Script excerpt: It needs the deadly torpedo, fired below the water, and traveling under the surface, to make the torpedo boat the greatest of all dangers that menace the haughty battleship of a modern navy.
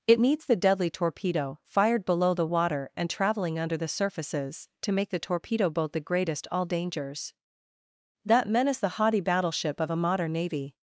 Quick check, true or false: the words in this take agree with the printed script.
false